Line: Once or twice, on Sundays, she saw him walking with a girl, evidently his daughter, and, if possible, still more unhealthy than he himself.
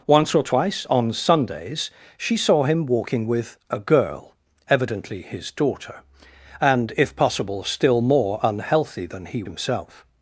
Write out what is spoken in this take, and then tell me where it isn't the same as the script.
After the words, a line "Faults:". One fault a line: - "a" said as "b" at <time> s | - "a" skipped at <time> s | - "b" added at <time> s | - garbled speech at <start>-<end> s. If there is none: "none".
Once or twice, on Sundays, she saw him walking with a girl, evidently his daughter, and, if possible, still more unhealthy than he himself.
Faults:
none